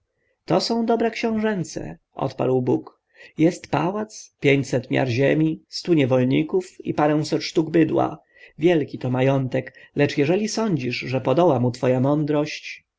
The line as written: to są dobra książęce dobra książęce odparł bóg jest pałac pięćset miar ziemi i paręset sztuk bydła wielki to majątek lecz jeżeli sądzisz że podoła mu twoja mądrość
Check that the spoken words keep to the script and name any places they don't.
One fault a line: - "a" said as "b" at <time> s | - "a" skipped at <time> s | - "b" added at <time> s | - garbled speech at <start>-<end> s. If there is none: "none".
- "dobra książęce" skipped at 2.0 s
- "stu niewolników" added at 5.7 s